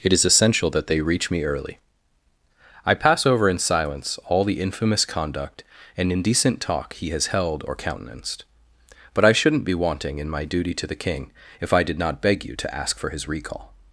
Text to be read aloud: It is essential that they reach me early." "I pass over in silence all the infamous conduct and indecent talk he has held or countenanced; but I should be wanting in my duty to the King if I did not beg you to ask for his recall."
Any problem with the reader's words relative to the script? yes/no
yes